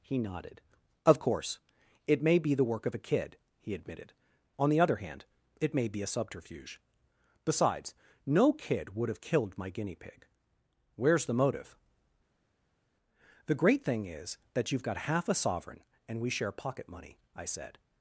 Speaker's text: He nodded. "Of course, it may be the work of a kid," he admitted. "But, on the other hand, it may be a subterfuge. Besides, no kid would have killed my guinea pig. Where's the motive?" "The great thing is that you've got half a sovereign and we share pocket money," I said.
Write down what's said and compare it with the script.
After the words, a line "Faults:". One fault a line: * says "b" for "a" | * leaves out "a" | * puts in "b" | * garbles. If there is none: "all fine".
He nodded. "Of course, it may be the work of a kid," he admitted. "On the other hand, it may be a subterfuge. Besides, no kid would have killed my guinea pig. Where's the motive?" "The great thing is that you've got half a sovereign and we share pocket money," I said.
Faults:
* leaves out "But"